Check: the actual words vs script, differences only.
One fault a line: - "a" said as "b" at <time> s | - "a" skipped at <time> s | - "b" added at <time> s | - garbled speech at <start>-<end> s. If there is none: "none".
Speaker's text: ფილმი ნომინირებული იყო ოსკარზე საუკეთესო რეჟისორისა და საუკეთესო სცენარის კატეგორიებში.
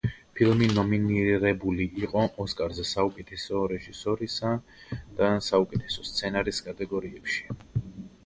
none